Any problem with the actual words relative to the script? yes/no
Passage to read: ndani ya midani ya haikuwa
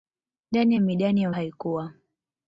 no